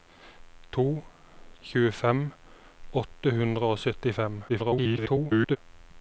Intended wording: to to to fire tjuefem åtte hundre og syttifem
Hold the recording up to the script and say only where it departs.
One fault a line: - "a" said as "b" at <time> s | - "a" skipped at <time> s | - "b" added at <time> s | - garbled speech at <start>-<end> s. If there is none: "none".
- "to to fire" skipped at 1.0 s
- garbled speech at 4.5-5.6 s